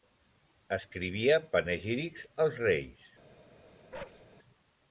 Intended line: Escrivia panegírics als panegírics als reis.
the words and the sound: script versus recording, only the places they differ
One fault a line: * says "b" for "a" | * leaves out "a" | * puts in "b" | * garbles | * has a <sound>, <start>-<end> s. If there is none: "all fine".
* leaves out "panegírics als"
* has a bark, 3.9-4.2 s